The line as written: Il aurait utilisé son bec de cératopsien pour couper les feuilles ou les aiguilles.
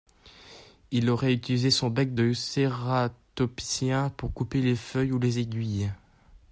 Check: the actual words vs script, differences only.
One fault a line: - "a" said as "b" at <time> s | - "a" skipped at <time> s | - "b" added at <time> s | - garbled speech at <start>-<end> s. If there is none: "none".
none